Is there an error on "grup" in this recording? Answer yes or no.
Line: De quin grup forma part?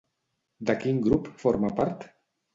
no